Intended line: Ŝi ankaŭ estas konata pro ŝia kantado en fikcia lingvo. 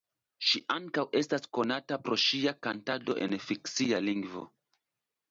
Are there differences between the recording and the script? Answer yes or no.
no